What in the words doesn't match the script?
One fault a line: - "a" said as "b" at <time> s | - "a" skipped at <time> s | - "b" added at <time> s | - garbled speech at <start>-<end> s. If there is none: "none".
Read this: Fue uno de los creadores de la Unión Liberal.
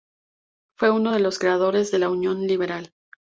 none